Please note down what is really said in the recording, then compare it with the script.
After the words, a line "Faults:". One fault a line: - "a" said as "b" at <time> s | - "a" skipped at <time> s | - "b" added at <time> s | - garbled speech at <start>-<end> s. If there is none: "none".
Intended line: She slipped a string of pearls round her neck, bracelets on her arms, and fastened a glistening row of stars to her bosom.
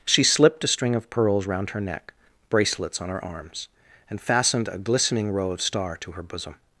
She slipped a string of pearls round her neck, bracelets on her arms, and fastened a glistening row of star to her bosom.
Faults:
- "stars" said as "star" at 5.6 s